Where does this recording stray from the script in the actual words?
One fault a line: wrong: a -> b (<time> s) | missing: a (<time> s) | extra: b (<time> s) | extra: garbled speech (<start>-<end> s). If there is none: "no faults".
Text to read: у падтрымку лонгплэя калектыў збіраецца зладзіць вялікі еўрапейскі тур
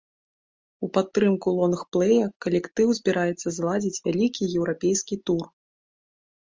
no faults